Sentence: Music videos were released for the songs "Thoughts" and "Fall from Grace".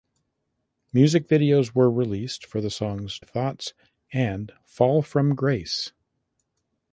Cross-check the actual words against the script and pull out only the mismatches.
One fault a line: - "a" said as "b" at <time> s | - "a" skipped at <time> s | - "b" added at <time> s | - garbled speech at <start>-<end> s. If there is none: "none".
none